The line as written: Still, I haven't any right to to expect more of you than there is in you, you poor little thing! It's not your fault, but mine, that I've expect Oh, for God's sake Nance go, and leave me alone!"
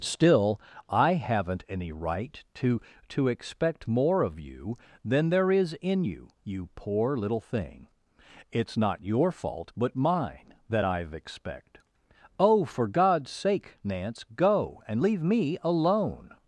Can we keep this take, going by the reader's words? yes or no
yes